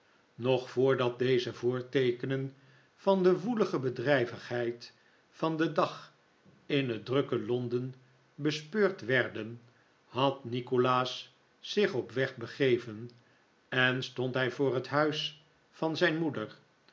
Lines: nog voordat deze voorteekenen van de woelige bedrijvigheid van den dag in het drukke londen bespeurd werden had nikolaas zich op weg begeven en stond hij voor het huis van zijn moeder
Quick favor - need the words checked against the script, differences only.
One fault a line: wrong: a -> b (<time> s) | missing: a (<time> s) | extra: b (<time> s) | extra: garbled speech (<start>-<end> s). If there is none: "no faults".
no faults